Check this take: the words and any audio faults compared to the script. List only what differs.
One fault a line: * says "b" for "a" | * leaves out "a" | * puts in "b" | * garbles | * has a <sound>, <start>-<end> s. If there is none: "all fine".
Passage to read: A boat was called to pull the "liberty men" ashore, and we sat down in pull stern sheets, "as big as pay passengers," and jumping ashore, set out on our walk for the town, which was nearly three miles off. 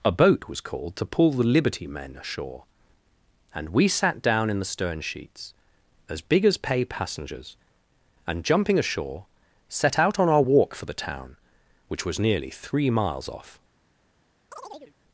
* says "the" for "pull"
* has a chirp, 14.5-14.9 s